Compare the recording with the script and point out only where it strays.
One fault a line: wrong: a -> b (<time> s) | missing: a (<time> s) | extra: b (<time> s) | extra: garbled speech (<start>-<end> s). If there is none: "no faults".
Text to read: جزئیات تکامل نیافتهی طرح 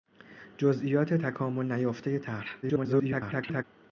extra: garbled speech (2.6-3.6 s)